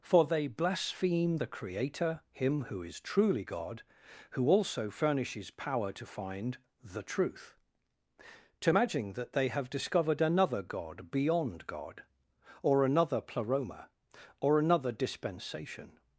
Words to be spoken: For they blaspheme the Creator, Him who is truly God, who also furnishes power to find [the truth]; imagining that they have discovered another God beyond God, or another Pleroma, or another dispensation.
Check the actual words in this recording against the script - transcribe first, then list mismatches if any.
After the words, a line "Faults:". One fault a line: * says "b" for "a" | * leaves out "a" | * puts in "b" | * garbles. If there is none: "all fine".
For they blaspheme the Creator, Him who is truly God, who also furnishes power to find [the truth]; to imagine that they have discovered another God beyond God, or another Pleroma, or another dispensation.
Faults:
* says "to imagine" for "imagining"